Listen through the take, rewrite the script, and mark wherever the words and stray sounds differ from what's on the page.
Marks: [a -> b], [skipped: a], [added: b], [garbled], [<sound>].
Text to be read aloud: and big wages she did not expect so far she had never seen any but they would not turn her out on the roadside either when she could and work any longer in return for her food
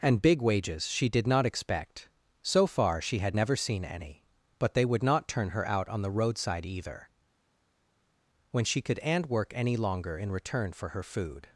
and big wages she did not expect so far she had never seen any but they would not turn her out on the roadside either when she could and work any longer in return for her food